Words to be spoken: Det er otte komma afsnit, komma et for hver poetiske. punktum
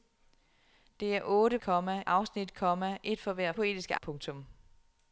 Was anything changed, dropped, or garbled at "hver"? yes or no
no